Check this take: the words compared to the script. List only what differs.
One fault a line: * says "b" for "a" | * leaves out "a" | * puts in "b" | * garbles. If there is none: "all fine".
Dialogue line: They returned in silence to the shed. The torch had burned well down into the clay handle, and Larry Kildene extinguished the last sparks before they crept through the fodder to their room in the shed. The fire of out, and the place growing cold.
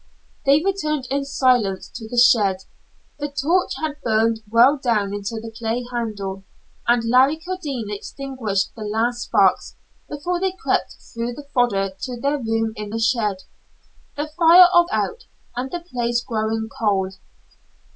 all fine